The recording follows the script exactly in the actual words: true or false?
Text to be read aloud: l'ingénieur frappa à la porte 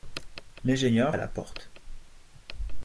false